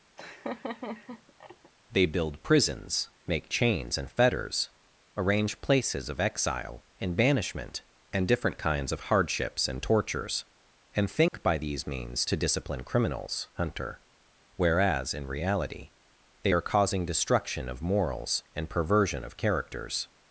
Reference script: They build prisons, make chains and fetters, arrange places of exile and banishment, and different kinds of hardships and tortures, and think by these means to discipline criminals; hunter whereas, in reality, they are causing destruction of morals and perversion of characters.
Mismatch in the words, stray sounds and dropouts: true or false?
true